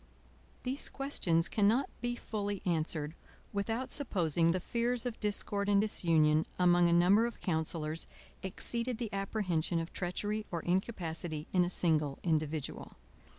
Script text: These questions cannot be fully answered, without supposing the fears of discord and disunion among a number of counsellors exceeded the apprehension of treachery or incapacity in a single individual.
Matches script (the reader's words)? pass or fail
pass